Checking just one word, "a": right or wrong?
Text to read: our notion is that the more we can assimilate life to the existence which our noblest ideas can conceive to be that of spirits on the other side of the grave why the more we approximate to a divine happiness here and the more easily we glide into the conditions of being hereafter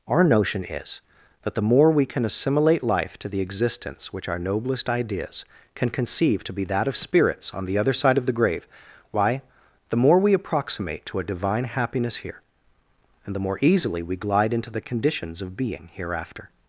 right